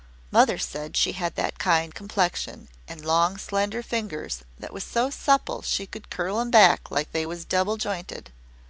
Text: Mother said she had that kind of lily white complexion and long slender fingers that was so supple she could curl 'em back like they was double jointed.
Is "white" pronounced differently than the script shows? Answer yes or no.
yes